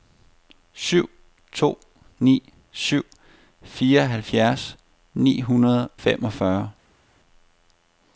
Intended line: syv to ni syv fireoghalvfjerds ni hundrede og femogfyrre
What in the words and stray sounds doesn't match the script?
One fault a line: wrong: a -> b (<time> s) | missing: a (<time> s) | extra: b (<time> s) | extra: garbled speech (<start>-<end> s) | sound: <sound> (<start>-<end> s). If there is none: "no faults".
missing: og (5.9 s)